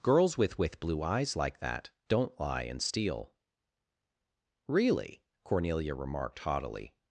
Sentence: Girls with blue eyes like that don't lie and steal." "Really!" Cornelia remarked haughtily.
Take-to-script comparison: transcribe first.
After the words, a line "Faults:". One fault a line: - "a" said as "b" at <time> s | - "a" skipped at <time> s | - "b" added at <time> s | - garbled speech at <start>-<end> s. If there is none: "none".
Girls with with blue eyes like that don't lie and steal." "Really!" Cornelia remarked haughtily.
Faults:
- "with" added at 0.6 s